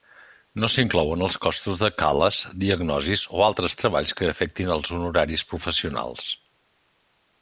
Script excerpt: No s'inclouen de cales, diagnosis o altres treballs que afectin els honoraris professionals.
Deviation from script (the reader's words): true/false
true